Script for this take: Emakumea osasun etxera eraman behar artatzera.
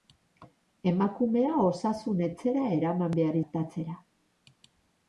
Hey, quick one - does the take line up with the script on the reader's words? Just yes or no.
yes